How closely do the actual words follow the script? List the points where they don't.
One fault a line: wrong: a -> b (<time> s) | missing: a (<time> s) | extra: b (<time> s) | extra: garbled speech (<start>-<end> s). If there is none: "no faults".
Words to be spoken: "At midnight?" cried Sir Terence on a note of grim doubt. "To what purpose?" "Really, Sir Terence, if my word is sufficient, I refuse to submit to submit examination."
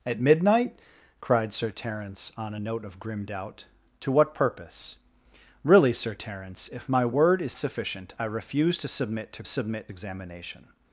no faults